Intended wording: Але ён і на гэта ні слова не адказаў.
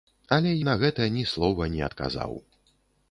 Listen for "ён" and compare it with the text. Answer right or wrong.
wrong